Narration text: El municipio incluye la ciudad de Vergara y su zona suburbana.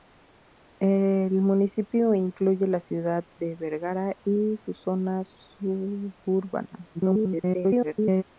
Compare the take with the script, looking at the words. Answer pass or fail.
fail